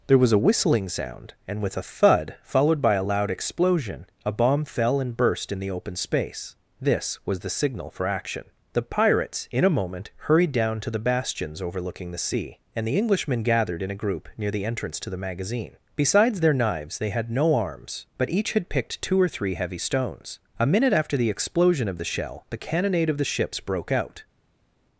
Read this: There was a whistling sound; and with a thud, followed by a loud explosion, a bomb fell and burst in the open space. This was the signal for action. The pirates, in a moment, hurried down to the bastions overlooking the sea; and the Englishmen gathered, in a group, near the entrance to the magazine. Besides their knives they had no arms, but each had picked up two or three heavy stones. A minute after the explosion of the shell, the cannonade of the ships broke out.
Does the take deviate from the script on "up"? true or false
true